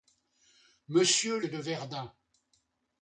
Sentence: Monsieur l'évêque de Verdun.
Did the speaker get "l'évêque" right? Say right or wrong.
wrong